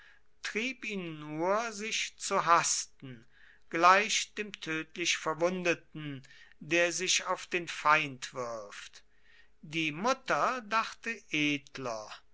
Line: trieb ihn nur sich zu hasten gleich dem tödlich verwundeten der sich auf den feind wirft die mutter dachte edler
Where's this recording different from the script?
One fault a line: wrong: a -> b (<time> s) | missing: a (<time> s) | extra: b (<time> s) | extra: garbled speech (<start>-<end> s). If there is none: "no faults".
no faults